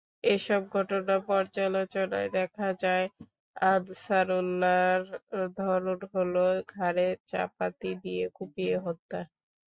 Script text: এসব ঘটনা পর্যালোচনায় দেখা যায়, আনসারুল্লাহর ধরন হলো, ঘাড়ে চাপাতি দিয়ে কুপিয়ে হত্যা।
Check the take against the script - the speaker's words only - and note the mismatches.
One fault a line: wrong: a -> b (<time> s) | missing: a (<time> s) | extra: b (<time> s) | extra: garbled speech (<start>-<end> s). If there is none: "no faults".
no faults